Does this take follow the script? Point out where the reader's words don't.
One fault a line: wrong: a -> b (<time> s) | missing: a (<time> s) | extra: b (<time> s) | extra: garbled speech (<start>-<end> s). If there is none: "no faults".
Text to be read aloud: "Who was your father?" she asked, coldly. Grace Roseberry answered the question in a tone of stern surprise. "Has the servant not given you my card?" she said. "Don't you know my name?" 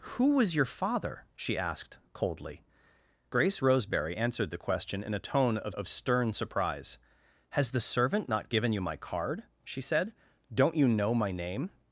extra: of (5.7 s)